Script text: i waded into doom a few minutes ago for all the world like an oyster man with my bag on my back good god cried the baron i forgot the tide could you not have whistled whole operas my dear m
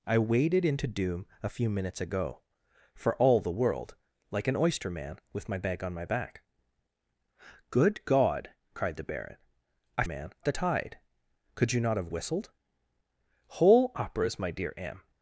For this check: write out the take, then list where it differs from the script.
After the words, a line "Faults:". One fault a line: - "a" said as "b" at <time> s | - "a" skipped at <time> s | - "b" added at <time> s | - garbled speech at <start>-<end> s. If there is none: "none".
i waded into doom a few minutes ago for all the world like an oyster man with my bag on my back good god cried the baron i man the tide could you not have whistled whole operas my dear m
Faults:
- "forgot" said as "man" at 10.0 s